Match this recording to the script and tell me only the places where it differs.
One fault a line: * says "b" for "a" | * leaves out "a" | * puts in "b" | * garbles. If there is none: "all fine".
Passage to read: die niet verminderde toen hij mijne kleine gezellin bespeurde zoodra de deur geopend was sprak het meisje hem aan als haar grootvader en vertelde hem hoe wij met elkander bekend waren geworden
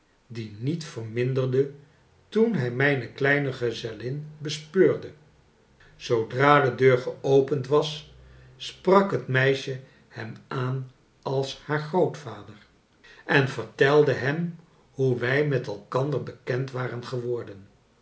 all fine